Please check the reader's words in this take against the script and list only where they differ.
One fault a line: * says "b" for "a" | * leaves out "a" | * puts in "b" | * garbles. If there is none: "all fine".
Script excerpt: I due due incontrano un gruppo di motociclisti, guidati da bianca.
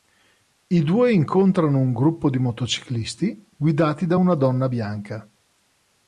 * leaves out "due"
* puts in "una donna"